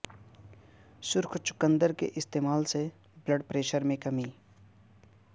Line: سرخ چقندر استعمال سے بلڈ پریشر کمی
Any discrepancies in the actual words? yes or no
yes